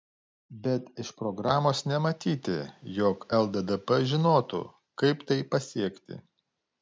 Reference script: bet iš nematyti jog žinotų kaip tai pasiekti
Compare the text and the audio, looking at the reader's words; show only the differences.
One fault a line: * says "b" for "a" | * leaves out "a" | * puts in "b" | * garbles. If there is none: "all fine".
* puts in "programos"
* puts in "lddp"